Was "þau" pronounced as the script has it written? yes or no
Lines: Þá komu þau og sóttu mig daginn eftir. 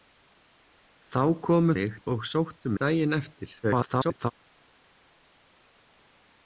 no